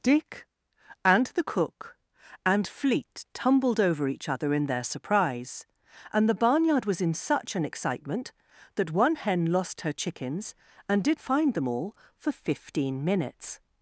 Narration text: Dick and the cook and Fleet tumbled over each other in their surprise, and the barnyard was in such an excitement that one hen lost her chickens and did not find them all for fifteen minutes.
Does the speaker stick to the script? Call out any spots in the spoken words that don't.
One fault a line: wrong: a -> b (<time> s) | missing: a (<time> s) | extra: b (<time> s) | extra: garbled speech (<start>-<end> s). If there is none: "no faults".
missing: not (11.2 s)